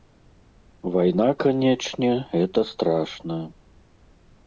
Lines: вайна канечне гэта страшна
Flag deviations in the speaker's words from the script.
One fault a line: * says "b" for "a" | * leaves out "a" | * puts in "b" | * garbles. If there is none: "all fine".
all fine